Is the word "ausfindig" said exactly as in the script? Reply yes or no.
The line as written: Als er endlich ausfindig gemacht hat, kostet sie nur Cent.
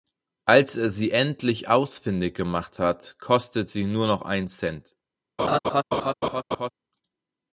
yes